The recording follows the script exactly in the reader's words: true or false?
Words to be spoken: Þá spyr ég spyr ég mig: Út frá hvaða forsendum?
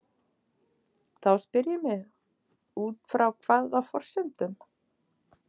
false